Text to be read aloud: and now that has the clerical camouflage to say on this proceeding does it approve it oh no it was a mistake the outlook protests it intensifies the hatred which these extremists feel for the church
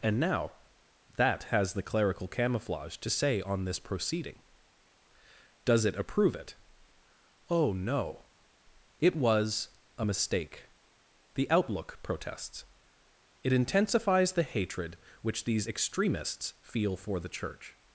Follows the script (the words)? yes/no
yes